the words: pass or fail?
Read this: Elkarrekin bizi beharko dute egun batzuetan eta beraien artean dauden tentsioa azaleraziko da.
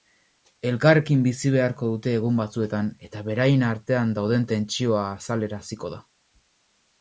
pass